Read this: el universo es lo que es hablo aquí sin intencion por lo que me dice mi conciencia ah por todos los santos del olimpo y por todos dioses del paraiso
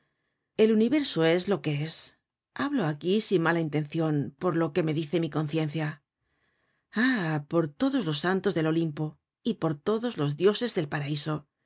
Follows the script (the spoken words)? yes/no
no